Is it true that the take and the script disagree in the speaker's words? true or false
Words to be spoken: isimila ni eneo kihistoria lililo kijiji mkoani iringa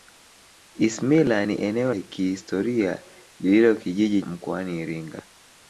false